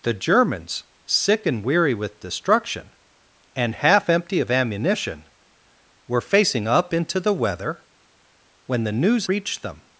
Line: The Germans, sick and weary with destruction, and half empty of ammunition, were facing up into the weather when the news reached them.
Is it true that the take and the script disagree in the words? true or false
false